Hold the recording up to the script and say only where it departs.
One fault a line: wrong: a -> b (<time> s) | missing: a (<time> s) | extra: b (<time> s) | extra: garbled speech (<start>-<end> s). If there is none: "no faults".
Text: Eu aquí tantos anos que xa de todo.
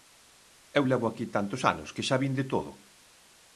extra: levo (0.9 s)
extra: vin (2.2 s)